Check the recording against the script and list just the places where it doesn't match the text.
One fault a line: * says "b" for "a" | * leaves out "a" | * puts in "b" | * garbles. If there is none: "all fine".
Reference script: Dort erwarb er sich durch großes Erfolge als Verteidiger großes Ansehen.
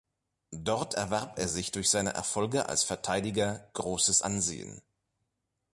* says "seine" for "großes"